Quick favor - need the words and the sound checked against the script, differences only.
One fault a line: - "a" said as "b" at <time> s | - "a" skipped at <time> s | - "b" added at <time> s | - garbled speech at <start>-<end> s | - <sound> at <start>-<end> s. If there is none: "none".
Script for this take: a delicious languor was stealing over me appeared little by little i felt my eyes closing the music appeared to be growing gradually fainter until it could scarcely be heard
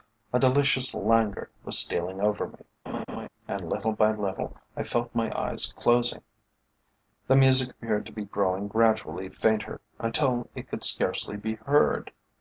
- laugh at 2.9-3.3 s
- "appeared" said as "and" at 3.5 s